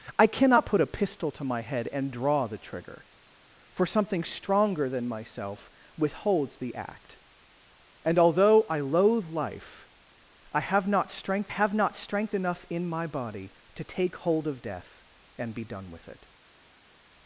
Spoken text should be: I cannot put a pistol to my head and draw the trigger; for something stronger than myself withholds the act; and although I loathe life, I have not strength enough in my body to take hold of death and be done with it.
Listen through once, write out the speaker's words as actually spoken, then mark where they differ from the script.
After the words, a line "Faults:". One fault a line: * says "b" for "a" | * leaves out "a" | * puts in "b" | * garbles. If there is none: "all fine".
I cannot put a pistol to my head and draw the trigger; for something stronger than myself withholds the act; and although I loathe life, I have not strength have not strength enough in my body to take hold of death and be done with it.
Faults:
* puts in "have not strength"